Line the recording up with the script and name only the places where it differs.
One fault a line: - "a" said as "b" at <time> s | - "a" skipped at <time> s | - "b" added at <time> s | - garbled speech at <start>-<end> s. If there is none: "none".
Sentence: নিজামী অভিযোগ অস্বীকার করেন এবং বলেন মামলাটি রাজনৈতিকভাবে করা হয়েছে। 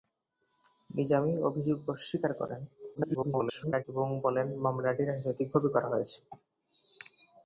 - garbled speech at 3.0-3.8 s